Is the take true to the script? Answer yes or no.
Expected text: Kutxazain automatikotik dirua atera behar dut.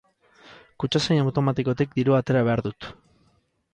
yes